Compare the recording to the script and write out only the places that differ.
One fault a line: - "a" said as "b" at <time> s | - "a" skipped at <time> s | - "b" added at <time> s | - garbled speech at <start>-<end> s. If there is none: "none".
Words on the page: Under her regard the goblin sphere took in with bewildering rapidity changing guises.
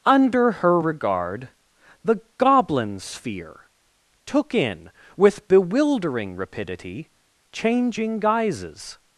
none